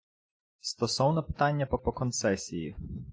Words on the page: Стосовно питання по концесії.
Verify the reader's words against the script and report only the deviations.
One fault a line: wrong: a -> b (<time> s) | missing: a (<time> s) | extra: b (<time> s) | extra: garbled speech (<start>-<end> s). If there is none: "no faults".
extra: по (1.8 s)